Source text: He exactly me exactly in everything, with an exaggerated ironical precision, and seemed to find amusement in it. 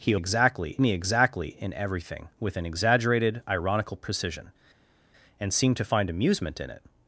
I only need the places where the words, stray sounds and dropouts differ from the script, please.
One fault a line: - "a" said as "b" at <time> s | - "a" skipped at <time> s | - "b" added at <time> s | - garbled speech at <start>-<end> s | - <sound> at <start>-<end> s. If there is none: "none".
none